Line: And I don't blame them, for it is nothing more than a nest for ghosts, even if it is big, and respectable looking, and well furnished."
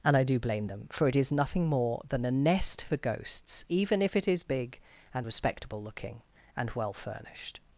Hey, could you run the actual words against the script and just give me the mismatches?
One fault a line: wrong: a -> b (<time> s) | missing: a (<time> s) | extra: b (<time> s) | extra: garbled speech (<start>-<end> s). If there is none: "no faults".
wrong: don't -> do (0.2 s)